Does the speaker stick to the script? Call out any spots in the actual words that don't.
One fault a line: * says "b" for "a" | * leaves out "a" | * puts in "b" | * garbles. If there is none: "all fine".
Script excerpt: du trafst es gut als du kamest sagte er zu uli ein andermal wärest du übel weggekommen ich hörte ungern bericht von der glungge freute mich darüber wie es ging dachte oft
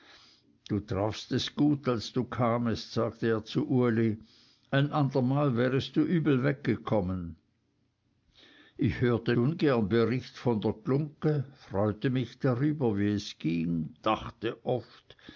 all fine